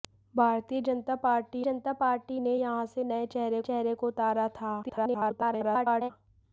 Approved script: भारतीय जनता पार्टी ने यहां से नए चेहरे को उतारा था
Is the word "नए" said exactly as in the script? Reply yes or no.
yes